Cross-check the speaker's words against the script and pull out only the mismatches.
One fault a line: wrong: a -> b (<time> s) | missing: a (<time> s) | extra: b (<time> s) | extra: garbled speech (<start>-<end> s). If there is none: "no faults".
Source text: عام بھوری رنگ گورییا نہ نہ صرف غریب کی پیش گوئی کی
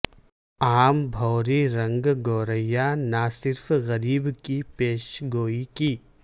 missing: نہ (3.2 s)